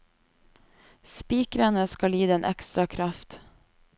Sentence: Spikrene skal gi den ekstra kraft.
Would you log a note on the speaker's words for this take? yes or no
no